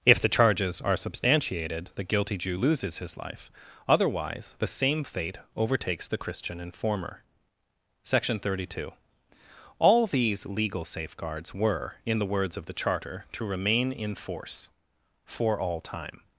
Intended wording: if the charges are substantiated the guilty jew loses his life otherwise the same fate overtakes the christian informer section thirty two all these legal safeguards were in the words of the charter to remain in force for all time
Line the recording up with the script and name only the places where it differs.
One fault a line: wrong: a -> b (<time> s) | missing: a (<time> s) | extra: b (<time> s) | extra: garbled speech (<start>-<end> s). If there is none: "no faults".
no faults